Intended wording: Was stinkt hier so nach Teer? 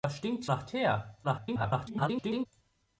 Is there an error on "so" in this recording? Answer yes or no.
yes